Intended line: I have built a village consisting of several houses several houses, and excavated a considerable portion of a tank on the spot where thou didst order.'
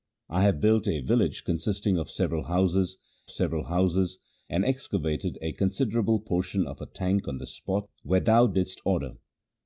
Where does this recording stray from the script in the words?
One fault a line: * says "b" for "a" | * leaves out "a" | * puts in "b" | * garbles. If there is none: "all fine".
all fine